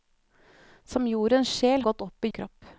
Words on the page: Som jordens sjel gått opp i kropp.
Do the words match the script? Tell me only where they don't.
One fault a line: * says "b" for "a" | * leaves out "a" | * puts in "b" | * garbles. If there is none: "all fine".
all fine